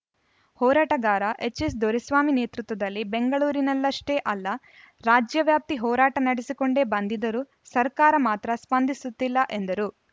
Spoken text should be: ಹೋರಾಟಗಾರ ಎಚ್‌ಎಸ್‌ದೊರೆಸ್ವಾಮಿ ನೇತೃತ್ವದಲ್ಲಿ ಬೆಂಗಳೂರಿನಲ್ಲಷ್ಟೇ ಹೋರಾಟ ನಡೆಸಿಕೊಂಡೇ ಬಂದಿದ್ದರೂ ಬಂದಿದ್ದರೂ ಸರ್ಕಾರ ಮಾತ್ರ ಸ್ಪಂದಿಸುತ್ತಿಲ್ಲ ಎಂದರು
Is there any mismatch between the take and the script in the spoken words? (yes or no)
yes